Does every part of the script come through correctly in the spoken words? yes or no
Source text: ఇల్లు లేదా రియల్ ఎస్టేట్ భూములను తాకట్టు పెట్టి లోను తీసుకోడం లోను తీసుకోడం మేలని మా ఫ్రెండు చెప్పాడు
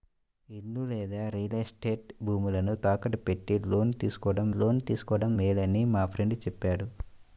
yes